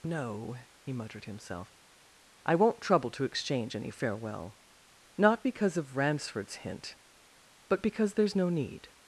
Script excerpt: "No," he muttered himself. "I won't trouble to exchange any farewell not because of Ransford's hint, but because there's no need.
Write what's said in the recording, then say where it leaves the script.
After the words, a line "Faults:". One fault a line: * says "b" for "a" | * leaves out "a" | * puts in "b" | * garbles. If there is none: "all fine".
"No," he muttered himself. "I won't trouble to exchange any farewell not because of Ransford's hint, but because there's no need.
Faults:
all fine